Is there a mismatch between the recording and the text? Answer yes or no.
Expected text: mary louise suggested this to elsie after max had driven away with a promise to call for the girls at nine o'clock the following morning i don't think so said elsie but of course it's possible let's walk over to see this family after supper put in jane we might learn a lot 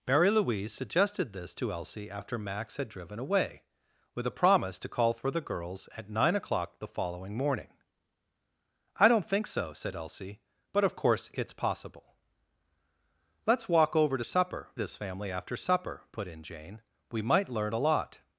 yes